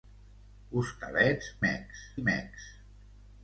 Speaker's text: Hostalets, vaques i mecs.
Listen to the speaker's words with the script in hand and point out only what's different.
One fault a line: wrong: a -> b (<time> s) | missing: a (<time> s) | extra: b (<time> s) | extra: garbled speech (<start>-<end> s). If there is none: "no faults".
wrong: vaques -> mecs (1.7 s)